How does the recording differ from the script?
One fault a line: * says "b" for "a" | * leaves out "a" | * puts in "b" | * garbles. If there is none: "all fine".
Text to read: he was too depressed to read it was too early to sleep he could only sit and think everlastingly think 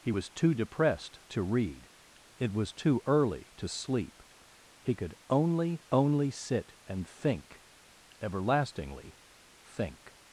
* puts in "only"